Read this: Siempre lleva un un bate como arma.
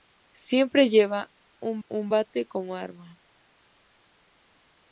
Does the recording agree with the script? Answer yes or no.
yes